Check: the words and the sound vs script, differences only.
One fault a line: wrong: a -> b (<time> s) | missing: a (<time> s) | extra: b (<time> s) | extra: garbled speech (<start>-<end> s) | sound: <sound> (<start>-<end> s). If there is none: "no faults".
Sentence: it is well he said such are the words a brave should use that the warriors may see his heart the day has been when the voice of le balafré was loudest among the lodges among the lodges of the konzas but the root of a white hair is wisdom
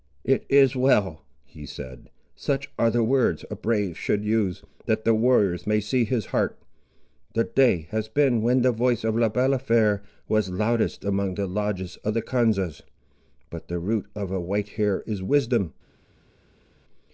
missing: among the lodges (12.0 s)